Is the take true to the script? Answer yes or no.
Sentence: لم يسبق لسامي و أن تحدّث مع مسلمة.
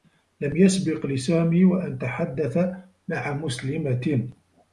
yes